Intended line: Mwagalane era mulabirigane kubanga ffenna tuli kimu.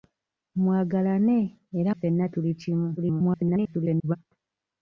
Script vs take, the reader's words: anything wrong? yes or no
yes